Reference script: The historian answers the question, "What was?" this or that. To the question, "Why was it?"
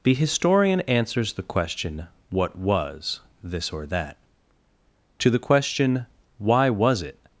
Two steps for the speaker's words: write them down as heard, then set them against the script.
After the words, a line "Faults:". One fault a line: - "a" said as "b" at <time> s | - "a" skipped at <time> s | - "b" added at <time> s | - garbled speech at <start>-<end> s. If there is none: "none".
The historian answers the question, "What was?" this or that. To the question, "Why was it?"
Faults:
none